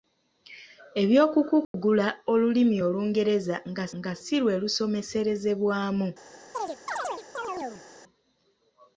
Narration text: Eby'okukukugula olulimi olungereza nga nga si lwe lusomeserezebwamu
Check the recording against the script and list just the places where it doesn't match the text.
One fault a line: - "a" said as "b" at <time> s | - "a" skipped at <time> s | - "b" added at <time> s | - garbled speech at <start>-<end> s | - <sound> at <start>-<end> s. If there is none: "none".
- dropout at 1.6-1.7 s
- chirp at 6.5-7.8 s